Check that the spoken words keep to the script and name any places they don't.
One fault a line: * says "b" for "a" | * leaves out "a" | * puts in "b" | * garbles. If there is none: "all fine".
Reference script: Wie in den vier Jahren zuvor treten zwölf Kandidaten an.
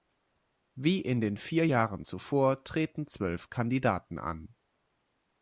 all fine